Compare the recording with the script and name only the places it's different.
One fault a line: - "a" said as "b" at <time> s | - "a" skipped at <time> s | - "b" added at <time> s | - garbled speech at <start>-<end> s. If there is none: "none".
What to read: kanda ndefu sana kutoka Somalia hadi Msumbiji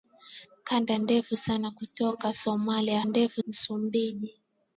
- "hadi" said as "ndefu" at 3.0 s